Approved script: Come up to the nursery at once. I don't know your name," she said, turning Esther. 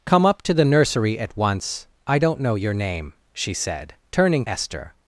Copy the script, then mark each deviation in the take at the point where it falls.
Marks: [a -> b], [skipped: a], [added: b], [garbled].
Come up to the nursery at once. I don't know your name," she said, turning Esther.